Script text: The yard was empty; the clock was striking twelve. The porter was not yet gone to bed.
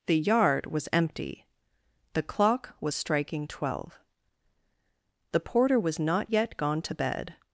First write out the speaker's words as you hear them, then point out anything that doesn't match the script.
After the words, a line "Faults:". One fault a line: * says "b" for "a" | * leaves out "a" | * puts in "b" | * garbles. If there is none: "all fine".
The yard was empty; the clock was striking twelve. The porter was not yet gone to bed.
Faults:
all fine